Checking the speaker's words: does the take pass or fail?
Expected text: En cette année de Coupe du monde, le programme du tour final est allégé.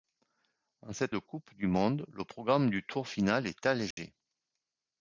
fail